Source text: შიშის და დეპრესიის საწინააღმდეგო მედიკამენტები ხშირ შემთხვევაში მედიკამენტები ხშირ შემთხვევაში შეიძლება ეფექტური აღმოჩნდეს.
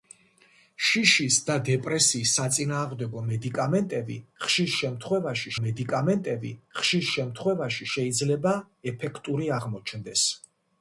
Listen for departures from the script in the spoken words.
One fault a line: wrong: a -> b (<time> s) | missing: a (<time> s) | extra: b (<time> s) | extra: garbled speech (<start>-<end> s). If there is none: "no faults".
no faults